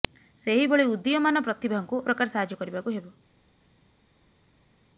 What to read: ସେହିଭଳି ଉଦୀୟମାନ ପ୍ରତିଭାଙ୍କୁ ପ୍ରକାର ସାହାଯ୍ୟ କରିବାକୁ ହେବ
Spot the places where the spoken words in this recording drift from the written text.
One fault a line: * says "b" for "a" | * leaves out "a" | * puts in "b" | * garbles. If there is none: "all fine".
all fine